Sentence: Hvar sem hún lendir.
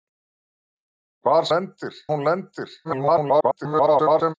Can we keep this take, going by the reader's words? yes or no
no